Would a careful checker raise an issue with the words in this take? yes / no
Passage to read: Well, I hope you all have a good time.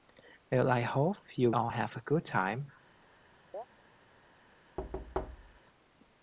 no